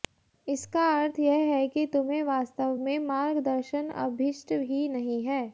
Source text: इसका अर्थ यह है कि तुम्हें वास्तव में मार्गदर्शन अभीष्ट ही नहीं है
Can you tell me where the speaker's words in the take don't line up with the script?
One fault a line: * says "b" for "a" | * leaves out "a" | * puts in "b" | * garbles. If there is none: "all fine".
all fine